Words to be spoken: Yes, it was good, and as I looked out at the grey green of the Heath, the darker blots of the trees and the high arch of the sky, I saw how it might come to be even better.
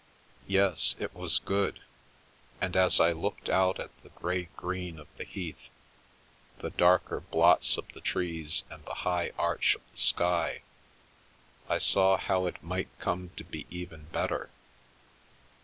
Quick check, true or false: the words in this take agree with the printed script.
true